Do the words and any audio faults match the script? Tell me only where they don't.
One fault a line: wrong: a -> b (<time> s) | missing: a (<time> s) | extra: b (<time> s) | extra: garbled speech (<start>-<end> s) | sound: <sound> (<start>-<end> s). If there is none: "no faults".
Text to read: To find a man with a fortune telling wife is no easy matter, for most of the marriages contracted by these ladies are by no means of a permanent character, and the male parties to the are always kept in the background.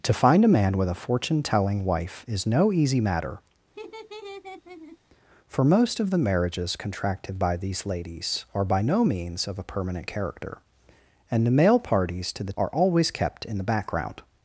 sound: laugh (3.7-5.0 s)